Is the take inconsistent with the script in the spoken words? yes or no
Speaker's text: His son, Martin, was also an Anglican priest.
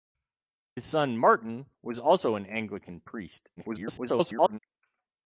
yes